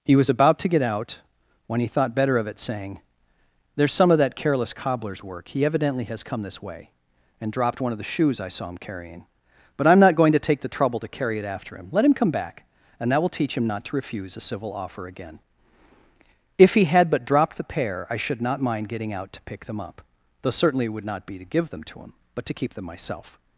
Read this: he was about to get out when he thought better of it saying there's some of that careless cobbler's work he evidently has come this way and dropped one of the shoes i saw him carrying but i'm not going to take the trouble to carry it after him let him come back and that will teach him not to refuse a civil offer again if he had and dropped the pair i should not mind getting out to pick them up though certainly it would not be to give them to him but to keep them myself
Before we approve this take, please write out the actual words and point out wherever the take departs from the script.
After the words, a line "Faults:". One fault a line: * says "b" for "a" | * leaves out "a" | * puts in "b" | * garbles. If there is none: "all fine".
he was about to get out when he thought better of it saying there's some of that careless cobbler's work he evidently has come this way and dropped one of the shoes i saw him carrying but i'm not going to take the trouble to carry it after him let him come back and that will teach him not to refuse a civil offer again if he had but dropped the pair i should not mind getting out to pick them up though certainly it would not be to give them to him but to keep them myself
Faults:
* says "but" for "and"